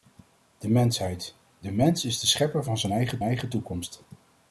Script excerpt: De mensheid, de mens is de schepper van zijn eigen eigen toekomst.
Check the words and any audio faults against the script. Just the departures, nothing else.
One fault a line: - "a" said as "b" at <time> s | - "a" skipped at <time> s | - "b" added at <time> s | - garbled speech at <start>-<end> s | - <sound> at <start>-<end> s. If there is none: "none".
none